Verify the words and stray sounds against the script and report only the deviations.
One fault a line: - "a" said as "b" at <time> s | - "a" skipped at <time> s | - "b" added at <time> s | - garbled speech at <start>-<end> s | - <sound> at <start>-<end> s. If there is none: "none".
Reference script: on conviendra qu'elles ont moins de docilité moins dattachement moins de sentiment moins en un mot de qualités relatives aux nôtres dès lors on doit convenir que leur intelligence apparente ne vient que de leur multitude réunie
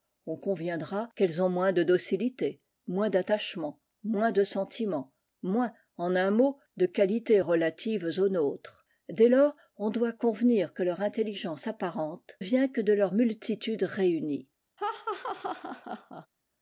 - "ne" skipped at 12.4 s
- laugh at 14.8-16.3 s